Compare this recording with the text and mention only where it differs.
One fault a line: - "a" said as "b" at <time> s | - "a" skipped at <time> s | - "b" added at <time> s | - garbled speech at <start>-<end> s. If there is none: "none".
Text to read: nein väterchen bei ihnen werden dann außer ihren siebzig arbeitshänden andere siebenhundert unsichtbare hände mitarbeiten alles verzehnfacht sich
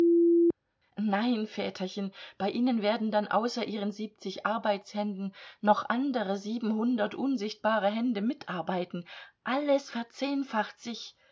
- "noch" added at 5.6 s